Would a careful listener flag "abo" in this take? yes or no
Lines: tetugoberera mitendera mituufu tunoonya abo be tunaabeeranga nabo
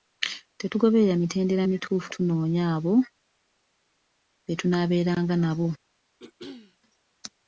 no